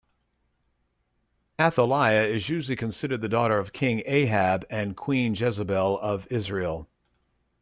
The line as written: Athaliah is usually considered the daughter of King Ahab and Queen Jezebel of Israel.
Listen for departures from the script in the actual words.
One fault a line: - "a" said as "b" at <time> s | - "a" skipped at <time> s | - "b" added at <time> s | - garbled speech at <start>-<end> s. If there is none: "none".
none